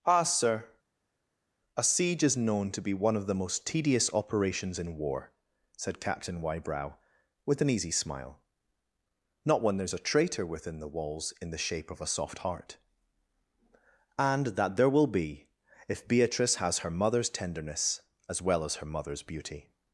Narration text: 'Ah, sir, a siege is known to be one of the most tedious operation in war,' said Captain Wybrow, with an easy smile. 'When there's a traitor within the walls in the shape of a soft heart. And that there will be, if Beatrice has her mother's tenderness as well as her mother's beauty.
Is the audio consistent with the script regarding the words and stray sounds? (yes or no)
no